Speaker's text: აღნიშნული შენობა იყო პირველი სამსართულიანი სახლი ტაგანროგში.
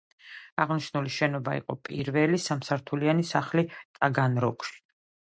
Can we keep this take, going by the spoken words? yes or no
yes